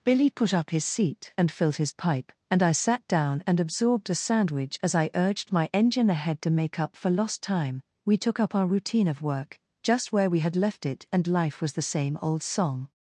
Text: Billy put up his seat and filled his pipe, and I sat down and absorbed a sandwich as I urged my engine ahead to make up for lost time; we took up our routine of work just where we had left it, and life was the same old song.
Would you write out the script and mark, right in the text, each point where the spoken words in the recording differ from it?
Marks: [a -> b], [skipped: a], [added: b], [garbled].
Billy put up his seat and filled his pipe, and I sat down and absorbed a sandwich as I urged my engine ahead to make up for lost time; we took up our routine of work just where we had left it, and life was the same old song.